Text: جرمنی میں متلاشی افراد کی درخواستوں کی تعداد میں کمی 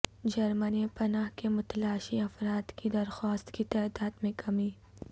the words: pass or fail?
fail